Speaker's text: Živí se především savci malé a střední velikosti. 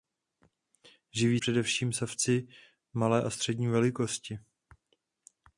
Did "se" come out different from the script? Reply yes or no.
yes